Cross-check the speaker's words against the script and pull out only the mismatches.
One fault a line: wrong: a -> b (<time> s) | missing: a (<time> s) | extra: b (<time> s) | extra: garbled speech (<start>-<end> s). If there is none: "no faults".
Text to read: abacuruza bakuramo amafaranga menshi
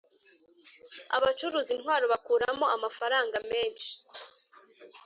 extra: intwaro (1.8 s)